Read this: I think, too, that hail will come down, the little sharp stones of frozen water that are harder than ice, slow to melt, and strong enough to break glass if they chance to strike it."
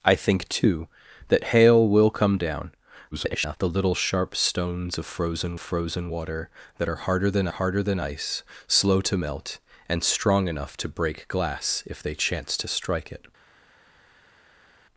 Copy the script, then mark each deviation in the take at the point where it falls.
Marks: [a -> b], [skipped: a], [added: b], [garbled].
I think, too, that hail will come down, [garbled] the little sharp stones of frozen [added: frozen] water that are harder than [added: harder than] ice, slow to melt, and strong enough to break glass if they chance to strike it."